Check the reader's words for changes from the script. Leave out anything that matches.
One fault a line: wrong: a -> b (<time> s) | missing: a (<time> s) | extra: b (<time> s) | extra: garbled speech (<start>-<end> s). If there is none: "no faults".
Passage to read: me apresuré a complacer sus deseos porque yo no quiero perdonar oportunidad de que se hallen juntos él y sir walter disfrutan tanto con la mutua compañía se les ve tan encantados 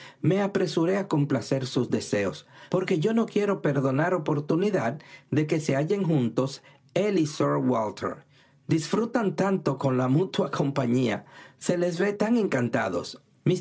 no faults